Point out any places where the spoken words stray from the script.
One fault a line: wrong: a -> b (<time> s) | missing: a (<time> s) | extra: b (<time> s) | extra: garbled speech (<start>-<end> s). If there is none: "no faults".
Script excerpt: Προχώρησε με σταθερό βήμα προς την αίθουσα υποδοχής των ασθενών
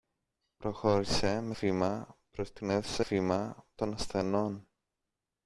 missing: σταθερό (1.6 s)
wrong: υποδοχής -> βήμα (3.0 s)